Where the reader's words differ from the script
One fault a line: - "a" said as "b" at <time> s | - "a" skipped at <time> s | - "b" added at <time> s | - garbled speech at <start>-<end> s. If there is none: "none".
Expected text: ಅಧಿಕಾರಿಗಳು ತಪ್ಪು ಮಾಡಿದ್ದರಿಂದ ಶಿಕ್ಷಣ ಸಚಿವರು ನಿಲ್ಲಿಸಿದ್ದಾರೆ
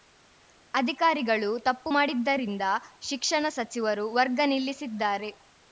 - "ವರ್ಗ" added at 4.1 s